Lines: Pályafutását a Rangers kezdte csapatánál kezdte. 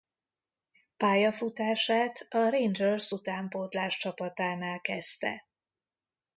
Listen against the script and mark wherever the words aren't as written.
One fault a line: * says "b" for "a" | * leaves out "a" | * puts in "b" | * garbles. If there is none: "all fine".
* says "utánpótlás" for "kezdte"